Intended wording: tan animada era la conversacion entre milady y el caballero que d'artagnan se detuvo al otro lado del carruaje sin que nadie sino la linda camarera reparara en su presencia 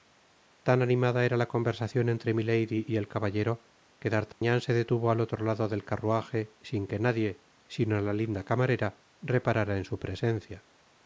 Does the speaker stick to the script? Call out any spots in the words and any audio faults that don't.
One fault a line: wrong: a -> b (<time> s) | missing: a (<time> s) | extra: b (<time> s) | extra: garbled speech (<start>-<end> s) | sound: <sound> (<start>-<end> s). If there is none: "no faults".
sound: dropout (4.3-4.4 s)